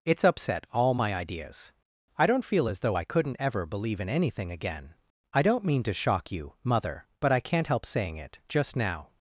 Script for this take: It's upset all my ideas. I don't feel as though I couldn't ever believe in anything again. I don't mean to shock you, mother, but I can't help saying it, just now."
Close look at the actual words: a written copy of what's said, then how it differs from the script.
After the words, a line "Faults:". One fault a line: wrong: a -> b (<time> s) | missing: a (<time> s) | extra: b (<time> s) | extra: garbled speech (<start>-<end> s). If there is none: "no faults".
It's upset all my ideas. I don't feel as though I couldn't ever believe in anything again. I don't mean to shock you, mother, but I can't help saying it, just now."
Faults:
no faults